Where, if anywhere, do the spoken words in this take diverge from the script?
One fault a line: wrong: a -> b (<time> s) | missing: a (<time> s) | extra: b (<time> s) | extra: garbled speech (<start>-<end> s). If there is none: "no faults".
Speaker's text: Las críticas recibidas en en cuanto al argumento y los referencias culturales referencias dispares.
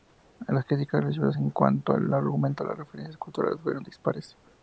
missing: en (1.5 s)
wrong: los -> las (2.7 s)
wrong: referencias -> fueron (3.6 s)